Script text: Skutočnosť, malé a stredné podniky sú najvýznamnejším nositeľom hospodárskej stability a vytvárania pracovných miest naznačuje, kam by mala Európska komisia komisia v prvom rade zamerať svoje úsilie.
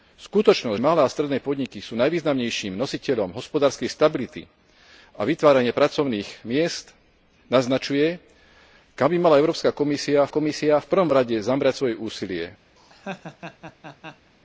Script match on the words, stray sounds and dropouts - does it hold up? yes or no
no